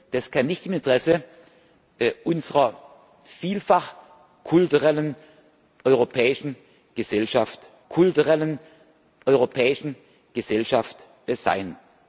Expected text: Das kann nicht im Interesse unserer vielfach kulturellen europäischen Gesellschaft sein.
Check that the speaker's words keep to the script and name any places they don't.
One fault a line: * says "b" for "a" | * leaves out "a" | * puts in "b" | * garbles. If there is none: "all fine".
* puts in "kulturellen europäischen Gesellschaft"